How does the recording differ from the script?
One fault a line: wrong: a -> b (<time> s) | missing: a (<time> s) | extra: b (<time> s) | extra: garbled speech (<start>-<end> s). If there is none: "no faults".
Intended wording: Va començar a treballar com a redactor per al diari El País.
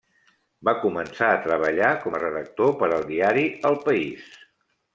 no faults